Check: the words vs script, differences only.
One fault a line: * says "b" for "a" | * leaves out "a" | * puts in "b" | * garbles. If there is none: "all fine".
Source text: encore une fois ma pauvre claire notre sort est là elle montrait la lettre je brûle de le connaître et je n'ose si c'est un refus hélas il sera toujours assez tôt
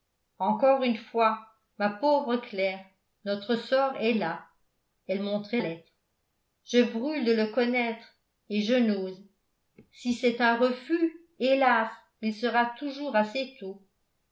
* leaves out "la"